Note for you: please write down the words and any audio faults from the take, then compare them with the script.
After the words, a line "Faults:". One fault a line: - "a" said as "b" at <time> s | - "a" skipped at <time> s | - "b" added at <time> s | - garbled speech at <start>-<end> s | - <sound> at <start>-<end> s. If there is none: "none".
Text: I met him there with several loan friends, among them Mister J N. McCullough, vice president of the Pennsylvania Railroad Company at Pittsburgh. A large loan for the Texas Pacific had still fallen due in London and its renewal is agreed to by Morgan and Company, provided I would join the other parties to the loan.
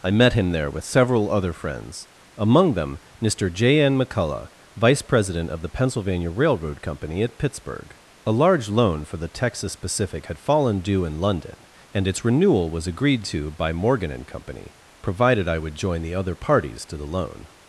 I met him there with several other friends, among them Mister J N. McCullough, vice president of the Pennsylvania Railroad Company at Pittsburgh. A large loan for the Texas Pacific had fallen due in London and its renewal was agreed to by Morgan and Company, provided I would join the other parties to the loan.
Faults:
- "loan" said as "other" at 1.3 s
- "still" skipped at 10.4 s
- "is" said as "was" at 12.7 s